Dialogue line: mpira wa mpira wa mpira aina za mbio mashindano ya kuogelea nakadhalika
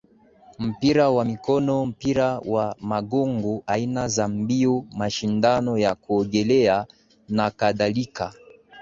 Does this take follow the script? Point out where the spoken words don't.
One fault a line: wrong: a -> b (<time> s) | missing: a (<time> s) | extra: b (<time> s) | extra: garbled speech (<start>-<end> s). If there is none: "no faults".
extra: mikono (1.2 s)
wrong: mpira -> magongo (2.8 s)